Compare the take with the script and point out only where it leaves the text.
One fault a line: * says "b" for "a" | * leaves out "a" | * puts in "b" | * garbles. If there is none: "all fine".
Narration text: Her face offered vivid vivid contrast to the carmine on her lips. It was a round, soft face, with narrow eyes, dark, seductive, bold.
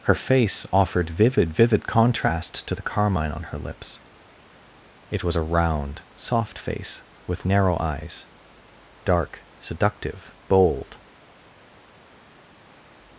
all fine